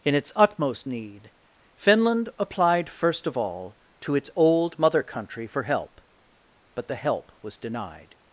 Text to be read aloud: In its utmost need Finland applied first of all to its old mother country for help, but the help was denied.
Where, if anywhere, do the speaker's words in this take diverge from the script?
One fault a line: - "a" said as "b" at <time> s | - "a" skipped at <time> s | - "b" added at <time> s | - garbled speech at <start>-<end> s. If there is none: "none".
none